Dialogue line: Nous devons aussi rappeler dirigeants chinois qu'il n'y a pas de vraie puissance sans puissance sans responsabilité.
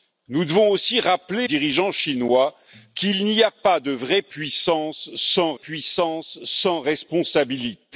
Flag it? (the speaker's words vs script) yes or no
no